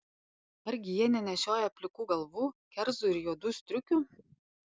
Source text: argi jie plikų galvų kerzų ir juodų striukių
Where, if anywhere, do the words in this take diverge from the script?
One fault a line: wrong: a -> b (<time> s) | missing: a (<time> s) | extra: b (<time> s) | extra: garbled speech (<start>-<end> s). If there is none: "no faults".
extra: nenešioja (1.1 s)